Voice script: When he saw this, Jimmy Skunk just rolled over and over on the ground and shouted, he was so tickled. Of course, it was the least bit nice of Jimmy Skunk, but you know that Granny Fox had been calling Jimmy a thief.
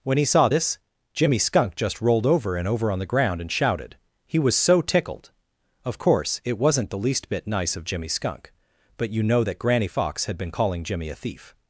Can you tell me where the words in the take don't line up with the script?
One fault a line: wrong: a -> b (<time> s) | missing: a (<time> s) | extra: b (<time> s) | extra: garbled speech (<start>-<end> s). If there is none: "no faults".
wrong: was -> wasn't (6.6 s)